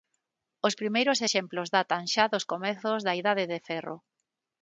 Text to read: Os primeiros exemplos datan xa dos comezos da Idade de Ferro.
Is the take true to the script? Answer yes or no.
yes